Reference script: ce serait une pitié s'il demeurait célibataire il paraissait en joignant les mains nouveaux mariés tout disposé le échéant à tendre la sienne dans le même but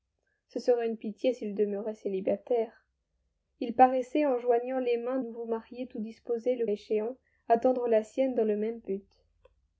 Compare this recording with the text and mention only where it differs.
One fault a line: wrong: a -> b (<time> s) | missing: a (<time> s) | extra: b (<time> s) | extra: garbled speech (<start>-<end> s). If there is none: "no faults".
no faults